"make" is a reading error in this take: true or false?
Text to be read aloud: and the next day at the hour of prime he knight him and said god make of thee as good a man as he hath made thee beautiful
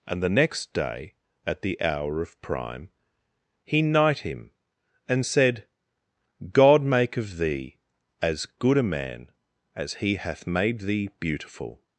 false